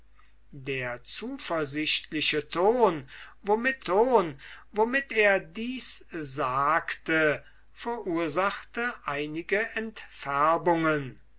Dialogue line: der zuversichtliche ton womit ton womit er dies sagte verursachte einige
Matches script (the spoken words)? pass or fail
pass